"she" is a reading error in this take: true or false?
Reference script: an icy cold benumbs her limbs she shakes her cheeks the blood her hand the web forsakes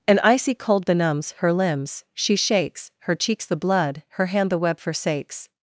false